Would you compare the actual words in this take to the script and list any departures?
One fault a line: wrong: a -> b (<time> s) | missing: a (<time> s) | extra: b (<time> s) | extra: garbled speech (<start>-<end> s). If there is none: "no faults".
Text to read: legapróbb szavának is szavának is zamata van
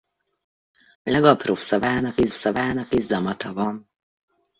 no faults